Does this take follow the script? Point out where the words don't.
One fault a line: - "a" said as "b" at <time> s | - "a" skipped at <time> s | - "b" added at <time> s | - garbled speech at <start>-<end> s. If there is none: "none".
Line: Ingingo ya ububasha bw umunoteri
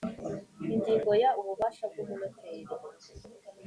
none